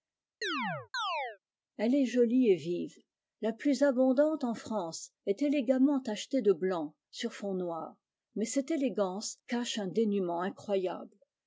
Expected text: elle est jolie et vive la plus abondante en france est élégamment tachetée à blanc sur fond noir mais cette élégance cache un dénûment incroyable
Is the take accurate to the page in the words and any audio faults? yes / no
no